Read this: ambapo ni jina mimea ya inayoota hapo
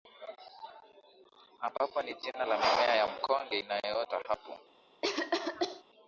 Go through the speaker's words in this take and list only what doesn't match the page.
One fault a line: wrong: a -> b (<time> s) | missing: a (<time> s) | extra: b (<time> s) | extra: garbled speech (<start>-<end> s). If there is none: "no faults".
extra: la (2.4 s)
extra: mkonge (3.1 s)